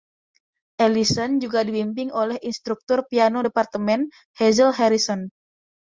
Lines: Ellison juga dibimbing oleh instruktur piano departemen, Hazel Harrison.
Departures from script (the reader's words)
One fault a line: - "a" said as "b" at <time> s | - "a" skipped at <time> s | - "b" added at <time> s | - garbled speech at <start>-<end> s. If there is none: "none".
none